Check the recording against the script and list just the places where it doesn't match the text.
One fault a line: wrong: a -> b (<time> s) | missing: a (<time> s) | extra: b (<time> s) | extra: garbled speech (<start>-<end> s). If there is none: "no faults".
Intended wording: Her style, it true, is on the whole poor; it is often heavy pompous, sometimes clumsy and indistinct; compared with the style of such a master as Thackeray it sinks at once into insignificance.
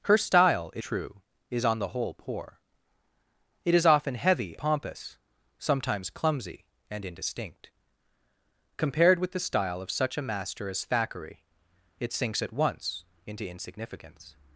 no faults